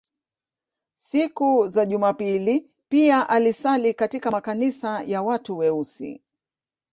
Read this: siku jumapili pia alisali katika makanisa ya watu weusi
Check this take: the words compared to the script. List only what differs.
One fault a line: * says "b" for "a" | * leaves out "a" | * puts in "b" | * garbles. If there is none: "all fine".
* puts in "za"